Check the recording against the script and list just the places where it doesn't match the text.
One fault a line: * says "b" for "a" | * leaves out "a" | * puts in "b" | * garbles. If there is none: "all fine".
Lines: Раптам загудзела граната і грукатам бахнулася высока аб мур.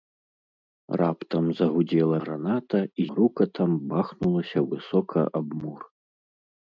all fine